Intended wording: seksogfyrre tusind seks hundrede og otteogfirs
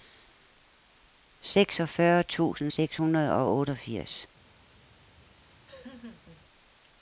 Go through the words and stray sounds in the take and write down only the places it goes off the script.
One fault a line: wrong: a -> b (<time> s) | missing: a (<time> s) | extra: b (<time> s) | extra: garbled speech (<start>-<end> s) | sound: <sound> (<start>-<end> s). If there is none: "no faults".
sound: laugh (5.3-6.4 s)